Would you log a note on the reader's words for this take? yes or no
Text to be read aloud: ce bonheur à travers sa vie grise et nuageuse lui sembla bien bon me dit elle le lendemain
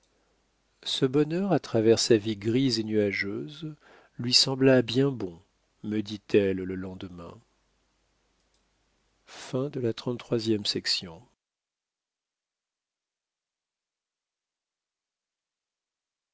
no